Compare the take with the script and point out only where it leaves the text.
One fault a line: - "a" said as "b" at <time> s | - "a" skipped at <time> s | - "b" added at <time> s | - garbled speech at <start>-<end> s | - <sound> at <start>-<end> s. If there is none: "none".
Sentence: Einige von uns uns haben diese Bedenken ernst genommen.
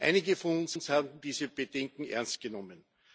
none